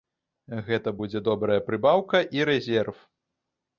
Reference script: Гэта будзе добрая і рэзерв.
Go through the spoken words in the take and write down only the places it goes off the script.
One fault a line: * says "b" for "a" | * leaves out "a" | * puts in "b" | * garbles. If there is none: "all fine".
* puts in "прыбаўка"